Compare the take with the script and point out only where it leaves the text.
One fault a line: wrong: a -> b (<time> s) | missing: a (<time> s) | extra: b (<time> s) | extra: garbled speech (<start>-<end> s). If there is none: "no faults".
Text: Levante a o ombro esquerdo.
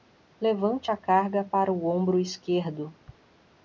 extra: carga para (0.9 s)